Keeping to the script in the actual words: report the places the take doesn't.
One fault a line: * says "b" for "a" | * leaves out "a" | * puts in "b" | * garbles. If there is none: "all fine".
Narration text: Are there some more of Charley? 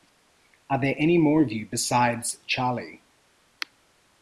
* says "any" for "some"
* puts in "you besides"